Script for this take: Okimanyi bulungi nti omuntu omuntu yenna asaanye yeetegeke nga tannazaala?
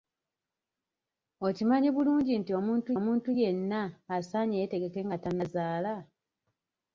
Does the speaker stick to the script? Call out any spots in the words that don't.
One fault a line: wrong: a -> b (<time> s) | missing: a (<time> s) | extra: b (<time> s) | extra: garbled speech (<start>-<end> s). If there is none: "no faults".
no faults